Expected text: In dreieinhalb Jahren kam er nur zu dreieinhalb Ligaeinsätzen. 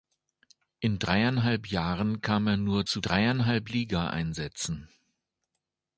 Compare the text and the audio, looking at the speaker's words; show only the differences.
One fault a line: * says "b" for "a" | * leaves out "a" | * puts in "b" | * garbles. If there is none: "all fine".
all fine